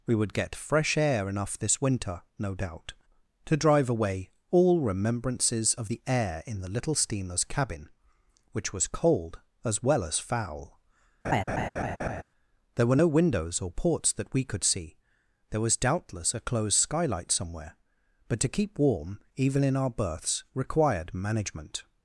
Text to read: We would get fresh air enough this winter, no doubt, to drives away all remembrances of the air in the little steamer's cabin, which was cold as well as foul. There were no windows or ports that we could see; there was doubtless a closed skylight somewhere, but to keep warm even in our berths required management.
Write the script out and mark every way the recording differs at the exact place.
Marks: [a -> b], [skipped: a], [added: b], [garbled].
We would get fresh air enough this winter, no doubt, to [drives -> drive] away all remembrances of the air in the little steamer's cabin, which was cold as well as foul. There were no windows or ports that we could see; there was doubtless a closed skylight somewhere, but to keep warm even in our berths required management.